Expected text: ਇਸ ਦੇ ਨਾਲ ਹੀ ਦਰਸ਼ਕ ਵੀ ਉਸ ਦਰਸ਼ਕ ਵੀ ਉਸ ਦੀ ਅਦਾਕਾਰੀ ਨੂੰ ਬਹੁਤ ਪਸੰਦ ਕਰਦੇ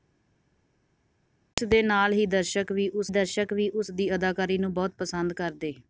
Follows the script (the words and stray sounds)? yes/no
yes